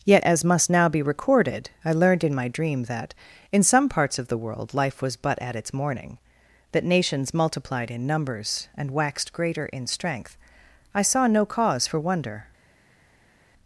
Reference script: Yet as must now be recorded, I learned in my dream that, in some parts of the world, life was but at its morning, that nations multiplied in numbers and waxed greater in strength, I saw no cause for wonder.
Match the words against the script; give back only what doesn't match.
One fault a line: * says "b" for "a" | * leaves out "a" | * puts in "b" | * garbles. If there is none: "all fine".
all fine